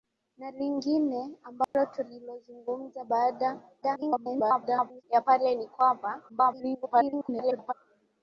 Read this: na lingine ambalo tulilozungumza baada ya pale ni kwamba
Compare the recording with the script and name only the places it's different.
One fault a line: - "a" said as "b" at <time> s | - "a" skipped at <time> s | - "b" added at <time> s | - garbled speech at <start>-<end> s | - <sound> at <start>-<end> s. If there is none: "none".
- dropout at 1.6-1.7 s
- garbled speech at 3.8-5.0 s
- garbled speech at 6.3-7.7 s